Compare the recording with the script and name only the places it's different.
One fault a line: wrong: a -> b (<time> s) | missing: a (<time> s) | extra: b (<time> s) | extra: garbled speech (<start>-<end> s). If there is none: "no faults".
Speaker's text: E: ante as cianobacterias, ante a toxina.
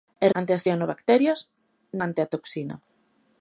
no faults